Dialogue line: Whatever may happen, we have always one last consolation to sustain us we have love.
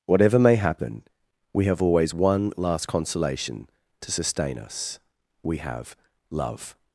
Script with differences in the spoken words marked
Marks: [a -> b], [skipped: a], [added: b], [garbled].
Whatever may happen, we have always one last consolation to sustain us we have love.